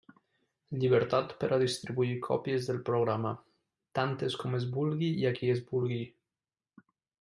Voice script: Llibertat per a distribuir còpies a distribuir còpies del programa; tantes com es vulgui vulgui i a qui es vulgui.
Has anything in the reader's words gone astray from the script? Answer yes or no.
yes